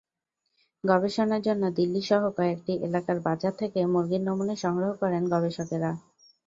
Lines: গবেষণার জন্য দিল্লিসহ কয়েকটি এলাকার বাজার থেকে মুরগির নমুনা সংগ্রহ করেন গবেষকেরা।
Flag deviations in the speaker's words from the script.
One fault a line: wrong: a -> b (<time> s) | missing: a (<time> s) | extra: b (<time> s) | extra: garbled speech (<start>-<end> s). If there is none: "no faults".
no faults